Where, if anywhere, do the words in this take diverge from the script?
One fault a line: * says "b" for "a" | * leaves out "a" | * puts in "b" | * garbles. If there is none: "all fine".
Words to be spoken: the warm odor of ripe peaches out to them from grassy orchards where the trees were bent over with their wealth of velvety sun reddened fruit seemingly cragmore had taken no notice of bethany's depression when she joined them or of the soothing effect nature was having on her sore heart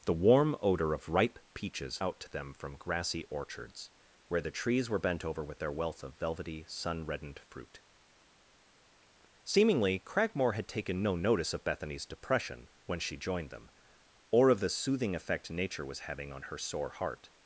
all fine